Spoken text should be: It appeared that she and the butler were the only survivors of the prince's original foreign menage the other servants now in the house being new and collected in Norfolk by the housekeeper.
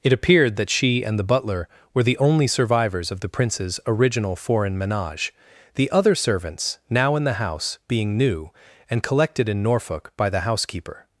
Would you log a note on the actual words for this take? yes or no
no